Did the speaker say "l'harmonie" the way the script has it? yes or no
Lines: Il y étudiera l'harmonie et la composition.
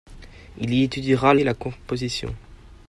no